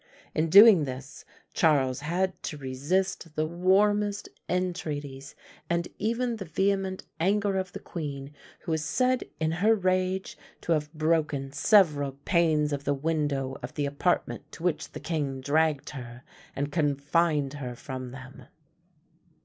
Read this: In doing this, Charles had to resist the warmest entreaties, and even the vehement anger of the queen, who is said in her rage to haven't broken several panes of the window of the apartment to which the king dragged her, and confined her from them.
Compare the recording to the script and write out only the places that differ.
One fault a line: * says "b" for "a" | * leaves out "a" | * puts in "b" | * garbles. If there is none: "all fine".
* says "have" for "haven't"